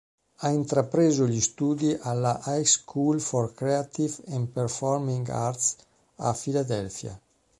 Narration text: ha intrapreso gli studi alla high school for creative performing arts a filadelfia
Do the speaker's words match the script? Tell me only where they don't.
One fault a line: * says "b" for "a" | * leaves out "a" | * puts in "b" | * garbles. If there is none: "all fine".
* puts in "and"